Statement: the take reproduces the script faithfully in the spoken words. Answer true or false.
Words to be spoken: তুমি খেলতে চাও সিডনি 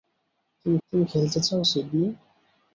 false